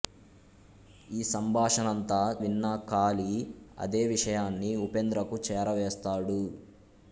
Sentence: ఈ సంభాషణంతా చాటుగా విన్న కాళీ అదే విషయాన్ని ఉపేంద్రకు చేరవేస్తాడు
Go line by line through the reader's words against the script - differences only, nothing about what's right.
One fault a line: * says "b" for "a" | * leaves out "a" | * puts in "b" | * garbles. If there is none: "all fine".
* leaves out "చాటుగా"